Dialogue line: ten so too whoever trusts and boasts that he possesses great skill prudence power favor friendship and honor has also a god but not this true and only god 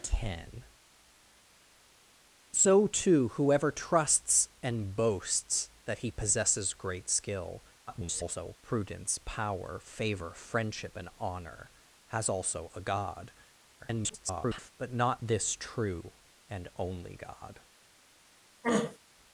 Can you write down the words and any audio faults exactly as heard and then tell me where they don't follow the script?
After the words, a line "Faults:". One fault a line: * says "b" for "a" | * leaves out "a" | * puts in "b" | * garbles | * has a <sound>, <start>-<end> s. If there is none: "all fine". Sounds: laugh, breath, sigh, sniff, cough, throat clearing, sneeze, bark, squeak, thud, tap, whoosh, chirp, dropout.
ten so too whoever trusts and boasts that he possesses great skill [garbled] prudence power favor friendship and honor has also a god [garbled] but not this true and only god
Faults:
* garbles
* garbles
* has a throat clearing, 18.6-19.0 s